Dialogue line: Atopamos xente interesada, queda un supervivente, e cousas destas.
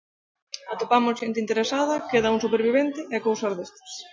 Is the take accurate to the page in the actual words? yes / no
yes